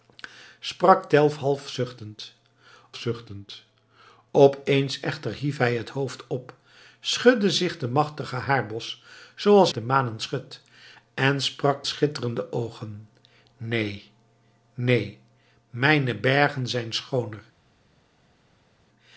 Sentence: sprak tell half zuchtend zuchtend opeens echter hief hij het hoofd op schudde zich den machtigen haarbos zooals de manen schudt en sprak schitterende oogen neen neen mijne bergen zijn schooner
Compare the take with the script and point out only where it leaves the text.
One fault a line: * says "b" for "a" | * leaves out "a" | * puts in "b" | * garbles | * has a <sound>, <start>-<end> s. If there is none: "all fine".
all fine